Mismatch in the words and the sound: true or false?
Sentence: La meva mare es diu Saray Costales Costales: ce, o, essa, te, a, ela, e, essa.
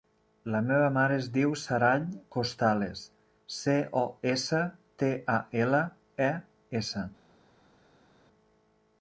true